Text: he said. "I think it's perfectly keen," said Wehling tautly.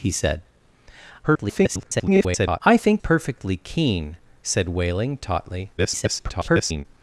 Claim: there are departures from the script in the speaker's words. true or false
true